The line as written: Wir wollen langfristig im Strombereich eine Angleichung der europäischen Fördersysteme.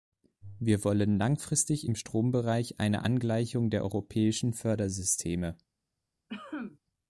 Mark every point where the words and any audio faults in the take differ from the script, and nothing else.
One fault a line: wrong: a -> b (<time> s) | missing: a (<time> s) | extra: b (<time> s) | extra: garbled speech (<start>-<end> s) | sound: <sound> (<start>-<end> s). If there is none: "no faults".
sound: cough (6.3-6.8 s)